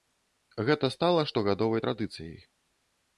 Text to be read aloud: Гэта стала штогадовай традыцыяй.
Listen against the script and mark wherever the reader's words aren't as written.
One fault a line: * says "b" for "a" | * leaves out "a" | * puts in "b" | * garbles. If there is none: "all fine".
all fine